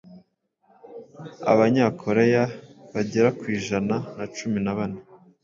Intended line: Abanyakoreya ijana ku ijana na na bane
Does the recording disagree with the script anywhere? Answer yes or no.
yes